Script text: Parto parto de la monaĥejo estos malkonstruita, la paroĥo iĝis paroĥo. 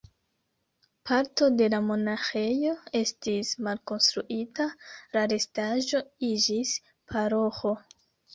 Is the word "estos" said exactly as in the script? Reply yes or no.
no